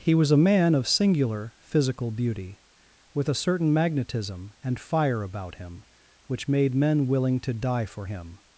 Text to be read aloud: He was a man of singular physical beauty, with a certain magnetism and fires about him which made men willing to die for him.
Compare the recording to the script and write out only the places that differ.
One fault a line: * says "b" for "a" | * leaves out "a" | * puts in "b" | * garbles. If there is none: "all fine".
* says "fire" for "fires"